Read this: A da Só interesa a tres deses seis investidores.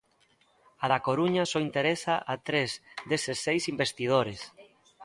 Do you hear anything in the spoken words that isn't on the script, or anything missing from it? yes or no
yes